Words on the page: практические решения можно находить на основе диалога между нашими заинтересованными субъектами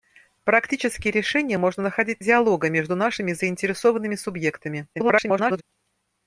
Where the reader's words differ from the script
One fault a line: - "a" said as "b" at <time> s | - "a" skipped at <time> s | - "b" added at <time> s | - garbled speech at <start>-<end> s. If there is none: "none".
- "на основе" skipped at 2.2 s
- garbled speech at 4.9-5.6 s